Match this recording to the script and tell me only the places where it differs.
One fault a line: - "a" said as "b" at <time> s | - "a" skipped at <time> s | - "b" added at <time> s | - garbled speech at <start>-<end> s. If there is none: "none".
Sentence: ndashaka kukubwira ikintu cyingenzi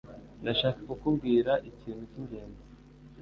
none